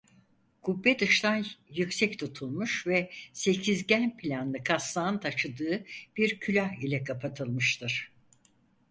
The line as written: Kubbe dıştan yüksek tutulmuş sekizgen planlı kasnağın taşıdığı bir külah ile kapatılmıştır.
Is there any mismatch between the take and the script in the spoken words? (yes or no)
yes